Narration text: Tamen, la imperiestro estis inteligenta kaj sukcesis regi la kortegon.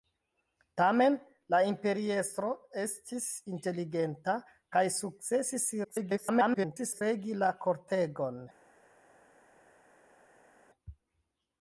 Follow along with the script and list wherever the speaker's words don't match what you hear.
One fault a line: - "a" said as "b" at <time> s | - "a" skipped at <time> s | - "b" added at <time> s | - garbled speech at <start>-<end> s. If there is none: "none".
- garbled speech at 5.8-7.0 s